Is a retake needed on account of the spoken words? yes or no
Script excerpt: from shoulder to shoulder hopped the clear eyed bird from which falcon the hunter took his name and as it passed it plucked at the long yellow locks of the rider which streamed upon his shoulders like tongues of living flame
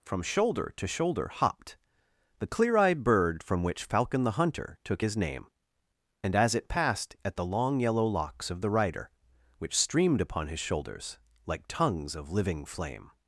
yes